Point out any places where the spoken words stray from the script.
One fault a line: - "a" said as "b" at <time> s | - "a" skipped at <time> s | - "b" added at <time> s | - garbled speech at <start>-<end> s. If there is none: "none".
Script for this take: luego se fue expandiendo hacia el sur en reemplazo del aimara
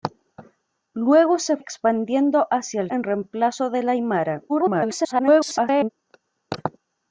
- "fue" skipped at 1.6 s
- "sur" skipped at 2.9 s
- garbled speech at 4.5-5.9 s